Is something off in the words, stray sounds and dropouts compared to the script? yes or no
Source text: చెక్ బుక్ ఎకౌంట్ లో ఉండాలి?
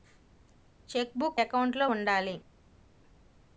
no